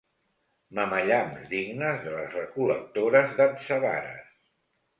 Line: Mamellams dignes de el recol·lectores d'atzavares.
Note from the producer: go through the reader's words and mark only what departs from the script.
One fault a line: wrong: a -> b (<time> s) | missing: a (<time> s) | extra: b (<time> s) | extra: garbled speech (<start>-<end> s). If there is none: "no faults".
wrong: el -> les (2.1 s)